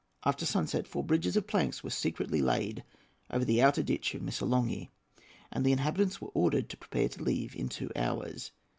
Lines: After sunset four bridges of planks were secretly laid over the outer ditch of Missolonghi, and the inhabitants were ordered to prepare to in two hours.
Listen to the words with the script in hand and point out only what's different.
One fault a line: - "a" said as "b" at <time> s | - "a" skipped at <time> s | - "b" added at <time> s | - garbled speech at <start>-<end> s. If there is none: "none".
- "leave" added at 7.2 s